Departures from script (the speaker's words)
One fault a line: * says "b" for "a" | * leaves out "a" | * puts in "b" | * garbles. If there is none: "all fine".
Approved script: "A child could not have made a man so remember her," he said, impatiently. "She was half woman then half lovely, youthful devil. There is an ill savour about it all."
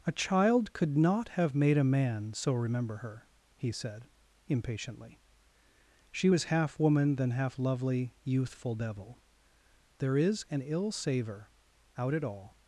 * says "out" for "about"